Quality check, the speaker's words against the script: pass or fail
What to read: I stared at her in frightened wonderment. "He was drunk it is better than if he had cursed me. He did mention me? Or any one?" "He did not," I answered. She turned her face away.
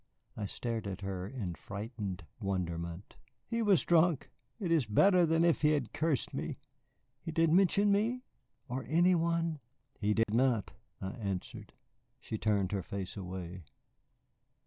pass